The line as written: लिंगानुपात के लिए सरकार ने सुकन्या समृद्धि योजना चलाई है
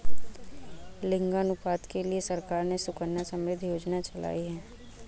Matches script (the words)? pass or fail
pass